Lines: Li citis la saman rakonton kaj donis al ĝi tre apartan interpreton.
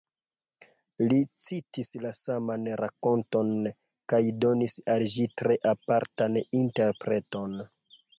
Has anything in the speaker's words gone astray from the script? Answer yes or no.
no